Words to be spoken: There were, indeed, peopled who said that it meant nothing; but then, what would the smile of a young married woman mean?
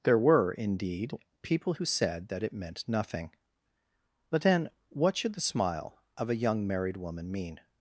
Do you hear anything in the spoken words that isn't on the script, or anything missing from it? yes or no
yes